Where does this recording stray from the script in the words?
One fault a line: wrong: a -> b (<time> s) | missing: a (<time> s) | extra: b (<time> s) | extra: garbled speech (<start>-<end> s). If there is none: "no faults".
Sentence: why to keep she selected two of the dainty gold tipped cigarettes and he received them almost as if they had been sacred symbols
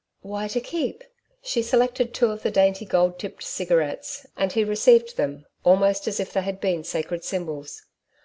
no faults